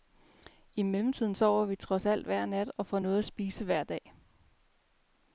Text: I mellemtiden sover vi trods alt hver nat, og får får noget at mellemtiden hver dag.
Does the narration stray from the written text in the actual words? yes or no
yes